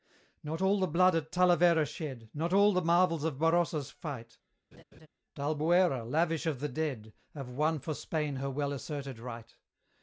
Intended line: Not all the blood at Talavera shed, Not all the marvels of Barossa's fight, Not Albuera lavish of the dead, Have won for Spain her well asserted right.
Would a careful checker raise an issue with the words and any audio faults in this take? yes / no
yes